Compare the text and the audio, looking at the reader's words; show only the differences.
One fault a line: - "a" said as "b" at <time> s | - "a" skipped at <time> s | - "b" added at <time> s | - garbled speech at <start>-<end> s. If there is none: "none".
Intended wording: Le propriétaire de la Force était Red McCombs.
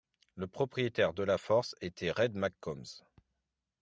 none